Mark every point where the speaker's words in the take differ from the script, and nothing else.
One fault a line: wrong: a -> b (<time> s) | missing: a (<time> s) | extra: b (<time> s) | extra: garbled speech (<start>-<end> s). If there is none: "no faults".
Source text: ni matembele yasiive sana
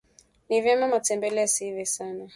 extra: vyema (0.6 s)